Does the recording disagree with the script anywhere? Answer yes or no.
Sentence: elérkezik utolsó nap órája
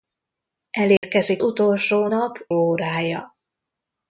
no